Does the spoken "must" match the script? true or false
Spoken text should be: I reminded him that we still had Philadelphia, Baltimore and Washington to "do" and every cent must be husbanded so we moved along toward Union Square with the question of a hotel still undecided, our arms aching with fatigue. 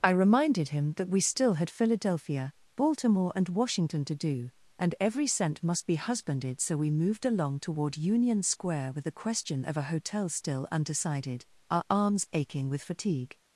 true